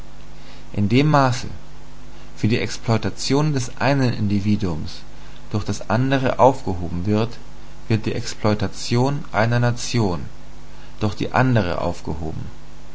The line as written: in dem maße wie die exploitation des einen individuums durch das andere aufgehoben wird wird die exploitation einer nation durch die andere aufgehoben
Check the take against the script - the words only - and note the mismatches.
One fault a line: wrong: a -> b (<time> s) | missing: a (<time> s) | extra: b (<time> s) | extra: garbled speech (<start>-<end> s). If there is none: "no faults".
no faults